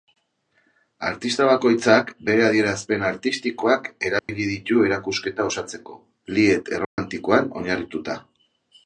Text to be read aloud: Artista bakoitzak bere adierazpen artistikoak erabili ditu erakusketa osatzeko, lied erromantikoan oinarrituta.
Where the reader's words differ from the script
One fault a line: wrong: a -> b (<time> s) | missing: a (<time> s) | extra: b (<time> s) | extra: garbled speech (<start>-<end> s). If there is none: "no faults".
no faults